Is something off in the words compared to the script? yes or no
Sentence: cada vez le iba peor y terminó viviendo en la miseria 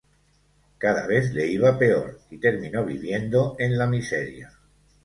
no